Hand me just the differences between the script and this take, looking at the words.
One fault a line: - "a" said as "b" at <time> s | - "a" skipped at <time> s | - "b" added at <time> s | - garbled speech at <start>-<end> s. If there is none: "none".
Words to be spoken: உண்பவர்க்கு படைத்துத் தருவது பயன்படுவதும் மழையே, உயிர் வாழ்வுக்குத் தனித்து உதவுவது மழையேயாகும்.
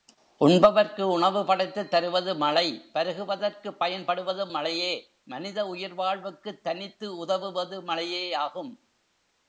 - "உணவு" added at 1.0 s
- "மழை பருகுவதற்குப்" added at 2.4 s
- "மனித" added at 5.2 s